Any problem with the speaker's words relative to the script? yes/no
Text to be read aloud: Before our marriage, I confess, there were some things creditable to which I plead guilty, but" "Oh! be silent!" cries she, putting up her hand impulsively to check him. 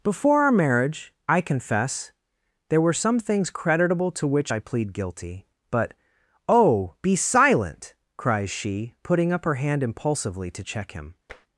no